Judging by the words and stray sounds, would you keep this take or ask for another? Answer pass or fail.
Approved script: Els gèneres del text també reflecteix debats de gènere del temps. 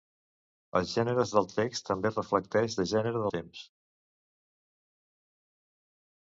fail